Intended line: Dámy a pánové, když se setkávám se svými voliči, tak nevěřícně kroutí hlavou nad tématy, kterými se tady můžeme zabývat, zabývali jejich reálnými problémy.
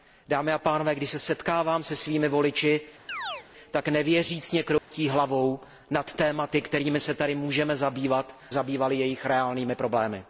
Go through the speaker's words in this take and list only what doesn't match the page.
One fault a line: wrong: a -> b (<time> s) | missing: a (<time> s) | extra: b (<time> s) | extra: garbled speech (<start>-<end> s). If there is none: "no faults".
no faults